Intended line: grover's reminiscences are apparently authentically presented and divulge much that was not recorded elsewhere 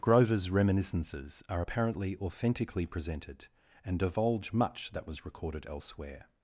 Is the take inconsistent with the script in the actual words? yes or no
yes